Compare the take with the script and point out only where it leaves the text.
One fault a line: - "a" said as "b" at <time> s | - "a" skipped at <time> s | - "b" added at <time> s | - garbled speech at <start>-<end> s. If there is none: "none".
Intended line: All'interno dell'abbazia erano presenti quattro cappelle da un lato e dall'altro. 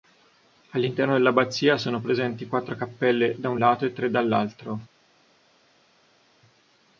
- "erano" said as "sono" at 1.8 s
- "tre" added at 3.9 s